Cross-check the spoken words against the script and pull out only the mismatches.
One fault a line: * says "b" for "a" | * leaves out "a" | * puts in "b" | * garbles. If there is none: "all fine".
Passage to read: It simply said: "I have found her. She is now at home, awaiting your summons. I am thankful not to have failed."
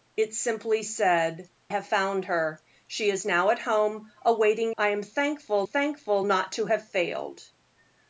* leaves out "I"
* leaves out "your summons"
* puts in "thankful"